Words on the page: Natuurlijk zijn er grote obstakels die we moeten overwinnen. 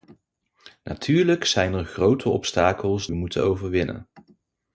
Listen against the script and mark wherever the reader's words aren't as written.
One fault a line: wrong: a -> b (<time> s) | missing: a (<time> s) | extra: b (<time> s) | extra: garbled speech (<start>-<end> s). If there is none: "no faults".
missing: die (3.1 s)